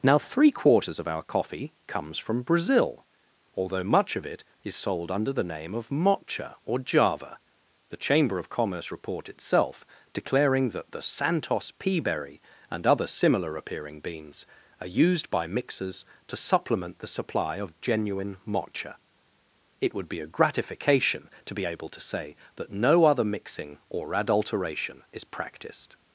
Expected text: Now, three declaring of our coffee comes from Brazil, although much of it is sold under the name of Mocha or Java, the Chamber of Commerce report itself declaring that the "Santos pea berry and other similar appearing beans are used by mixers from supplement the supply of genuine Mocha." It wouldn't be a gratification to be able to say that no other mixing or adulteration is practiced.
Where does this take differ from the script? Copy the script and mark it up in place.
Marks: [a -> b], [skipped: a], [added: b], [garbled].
Now, three [declaring -> quarters] of our coffee comes from Brazil, although much of it is sold under the name of Mocha or Java, the Chamber of Commerce report itself declaring that the "Santos pea berry and other similar appearing beans are used by mixers [from -> to] supplement the supply of genuine Mocha." It [wouldn't -> would] be a gratification to be able to say that no other mixing or adulteration is practiced.